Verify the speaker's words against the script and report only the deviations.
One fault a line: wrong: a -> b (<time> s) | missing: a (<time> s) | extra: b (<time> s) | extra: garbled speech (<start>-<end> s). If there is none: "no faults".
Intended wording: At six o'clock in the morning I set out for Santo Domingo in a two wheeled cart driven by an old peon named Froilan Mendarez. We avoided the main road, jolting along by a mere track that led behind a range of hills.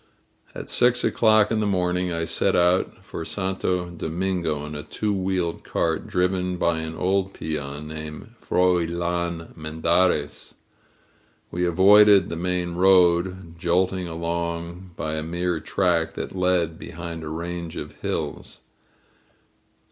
no faults